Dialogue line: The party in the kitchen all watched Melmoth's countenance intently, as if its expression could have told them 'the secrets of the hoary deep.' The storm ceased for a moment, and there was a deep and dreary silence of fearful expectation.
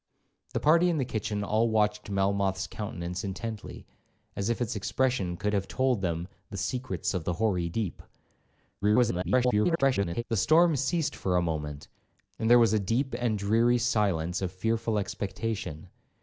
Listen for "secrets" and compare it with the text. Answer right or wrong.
right